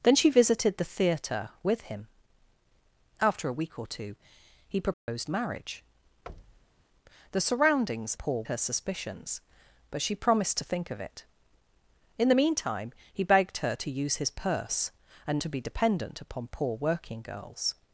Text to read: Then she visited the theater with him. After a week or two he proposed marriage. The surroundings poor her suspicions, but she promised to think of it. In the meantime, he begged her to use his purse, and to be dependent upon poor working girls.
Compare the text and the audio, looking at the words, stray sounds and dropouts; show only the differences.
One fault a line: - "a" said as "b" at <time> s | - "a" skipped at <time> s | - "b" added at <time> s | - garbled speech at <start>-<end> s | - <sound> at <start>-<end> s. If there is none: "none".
- dropout at 4.9-5.1 s
- thud at 6.3-6.8 s